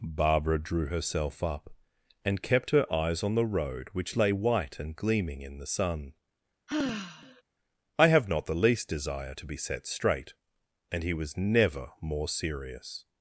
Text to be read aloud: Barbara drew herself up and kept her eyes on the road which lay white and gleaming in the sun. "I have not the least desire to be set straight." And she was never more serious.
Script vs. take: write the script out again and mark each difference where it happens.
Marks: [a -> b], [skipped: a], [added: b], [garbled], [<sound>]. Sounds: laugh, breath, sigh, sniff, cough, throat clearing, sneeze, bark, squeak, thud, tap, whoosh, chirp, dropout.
Barbara drew herself up and kept her eyes on the road which lay white and gleaming in the sun. [sigh] "I have not the least desire to be set straight." And [she -> he] was never more serious.